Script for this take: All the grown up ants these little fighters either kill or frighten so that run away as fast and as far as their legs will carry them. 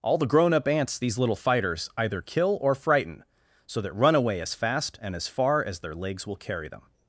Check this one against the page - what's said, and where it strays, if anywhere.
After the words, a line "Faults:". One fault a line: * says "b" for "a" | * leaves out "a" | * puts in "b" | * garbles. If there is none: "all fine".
All the grown up ants these little fighters either kill or frighten so that run away as fast and as far as their legs will carry them.
Faults:
all fine